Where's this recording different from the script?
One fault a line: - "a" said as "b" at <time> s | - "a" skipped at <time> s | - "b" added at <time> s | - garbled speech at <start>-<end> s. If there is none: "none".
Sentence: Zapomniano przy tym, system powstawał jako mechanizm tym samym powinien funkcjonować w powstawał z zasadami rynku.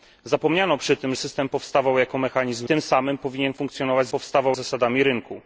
none